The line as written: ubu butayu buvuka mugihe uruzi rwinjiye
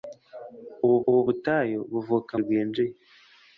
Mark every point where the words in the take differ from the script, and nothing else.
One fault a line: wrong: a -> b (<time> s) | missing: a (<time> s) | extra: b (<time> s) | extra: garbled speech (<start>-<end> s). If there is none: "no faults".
extra: ubu (1.1 s)
missing: mugihe uruzi (2.3 s)